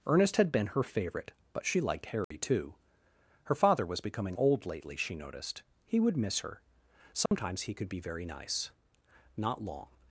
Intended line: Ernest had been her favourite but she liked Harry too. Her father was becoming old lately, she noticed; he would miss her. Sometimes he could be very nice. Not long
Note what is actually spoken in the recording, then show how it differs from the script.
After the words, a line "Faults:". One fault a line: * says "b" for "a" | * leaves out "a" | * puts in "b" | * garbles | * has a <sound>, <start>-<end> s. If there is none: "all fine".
Ernest had been her favourite but she liked Harry too. Her father was becoming old lately, she noticed; he would miss her. Sometimes he could be very nice. Not long
Faults:
* has a dropout, 2.2-2.3 s
* has a dropout, 7.3-7.3 s